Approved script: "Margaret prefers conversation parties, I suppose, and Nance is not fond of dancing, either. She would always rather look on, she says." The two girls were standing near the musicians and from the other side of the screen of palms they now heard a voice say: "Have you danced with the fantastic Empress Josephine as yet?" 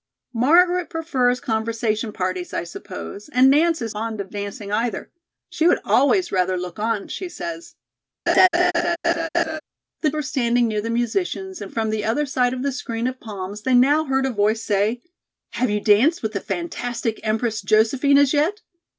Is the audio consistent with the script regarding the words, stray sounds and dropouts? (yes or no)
no